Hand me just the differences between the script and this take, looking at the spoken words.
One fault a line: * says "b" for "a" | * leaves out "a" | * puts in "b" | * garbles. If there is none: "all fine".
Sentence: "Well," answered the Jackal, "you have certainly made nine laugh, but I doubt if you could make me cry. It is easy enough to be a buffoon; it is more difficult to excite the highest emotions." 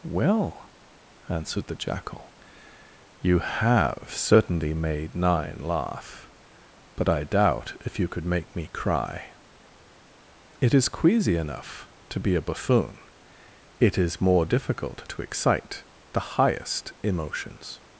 * says "queasy" for "easy"